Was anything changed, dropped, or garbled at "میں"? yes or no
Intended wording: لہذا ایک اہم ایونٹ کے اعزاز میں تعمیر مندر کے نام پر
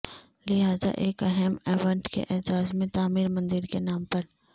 no